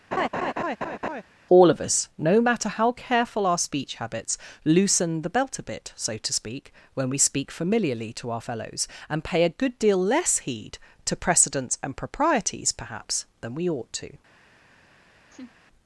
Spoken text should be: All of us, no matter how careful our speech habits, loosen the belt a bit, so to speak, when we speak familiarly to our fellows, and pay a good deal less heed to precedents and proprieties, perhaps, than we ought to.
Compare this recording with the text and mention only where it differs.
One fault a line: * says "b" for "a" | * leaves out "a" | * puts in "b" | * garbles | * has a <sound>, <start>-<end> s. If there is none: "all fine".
* has a laugh, 0.1-1.2 s
* has a laugh, 15.3-15.5 s